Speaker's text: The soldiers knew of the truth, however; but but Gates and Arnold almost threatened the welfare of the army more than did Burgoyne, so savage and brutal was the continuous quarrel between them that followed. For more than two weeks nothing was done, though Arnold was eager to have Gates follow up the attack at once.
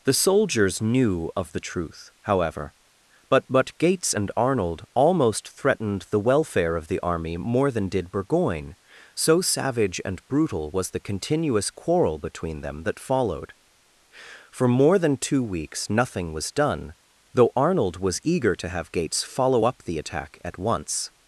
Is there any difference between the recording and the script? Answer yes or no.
no